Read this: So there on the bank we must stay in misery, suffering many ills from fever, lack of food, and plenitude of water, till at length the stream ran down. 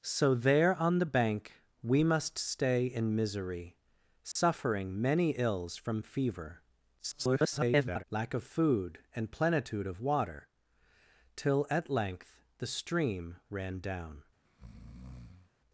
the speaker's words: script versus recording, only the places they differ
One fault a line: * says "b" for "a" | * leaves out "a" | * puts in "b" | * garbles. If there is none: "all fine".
* garbles